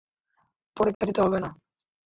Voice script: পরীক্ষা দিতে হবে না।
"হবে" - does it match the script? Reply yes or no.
yes